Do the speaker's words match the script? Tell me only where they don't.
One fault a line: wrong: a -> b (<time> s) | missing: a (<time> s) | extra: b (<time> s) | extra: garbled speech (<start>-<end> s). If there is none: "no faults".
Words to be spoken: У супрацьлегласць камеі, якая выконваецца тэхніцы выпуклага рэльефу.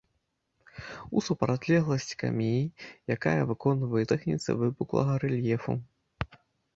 no faults